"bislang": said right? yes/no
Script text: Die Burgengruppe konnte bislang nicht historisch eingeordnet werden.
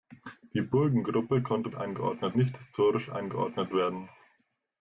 no